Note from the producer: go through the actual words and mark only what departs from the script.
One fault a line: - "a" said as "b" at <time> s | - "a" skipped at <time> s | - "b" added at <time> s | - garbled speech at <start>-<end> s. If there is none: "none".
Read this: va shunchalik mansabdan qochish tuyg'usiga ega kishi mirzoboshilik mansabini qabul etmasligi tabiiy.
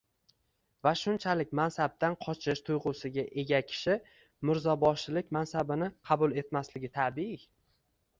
none